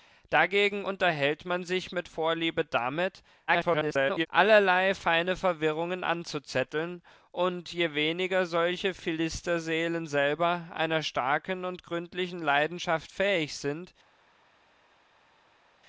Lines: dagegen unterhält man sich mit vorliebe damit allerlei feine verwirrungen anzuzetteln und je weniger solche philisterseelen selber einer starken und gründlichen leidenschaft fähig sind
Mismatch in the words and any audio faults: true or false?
true